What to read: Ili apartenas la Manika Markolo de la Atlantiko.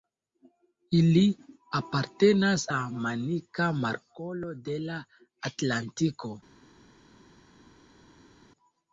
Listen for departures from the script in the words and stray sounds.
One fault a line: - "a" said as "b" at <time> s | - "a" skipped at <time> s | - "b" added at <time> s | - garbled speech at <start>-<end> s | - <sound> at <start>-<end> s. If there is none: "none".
none